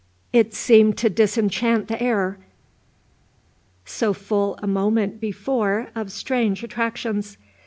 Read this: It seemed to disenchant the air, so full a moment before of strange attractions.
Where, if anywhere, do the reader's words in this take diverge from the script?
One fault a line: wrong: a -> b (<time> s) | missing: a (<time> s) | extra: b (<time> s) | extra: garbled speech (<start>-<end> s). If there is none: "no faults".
no faults